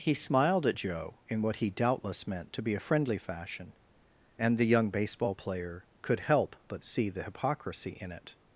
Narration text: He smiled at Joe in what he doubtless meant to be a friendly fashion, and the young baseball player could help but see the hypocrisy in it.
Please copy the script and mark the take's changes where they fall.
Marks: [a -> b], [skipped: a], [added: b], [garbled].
He smiled at Joe in what he doubtless meant to be a friendly fashion, and the young baseball player could help but see the hypocrisy in it.